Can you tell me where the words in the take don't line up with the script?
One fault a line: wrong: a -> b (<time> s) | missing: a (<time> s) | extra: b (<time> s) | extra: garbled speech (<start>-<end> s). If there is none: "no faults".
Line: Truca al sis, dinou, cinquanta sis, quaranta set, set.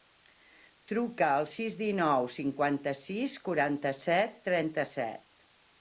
extra: trenta (4.5 s)